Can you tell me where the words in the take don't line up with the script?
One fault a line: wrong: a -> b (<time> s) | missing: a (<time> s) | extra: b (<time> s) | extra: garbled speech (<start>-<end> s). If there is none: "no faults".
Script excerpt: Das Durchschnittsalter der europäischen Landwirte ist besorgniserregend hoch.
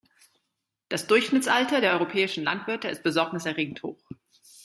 no faults